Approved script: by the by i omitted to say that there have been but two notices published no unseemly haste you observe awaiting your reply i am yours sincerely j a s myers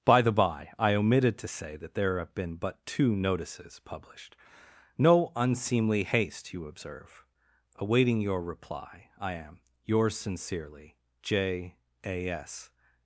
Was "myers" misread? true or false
true